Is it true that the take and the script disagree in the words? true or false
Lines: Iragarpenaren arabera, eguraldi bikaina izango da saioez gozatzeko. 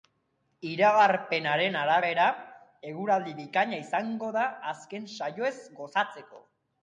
true